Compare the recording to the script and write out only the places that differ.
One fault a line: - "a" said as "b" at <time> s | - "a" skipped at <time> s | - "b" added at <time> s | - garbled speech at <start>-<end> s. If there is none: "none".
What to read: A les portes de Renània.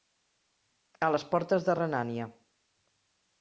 none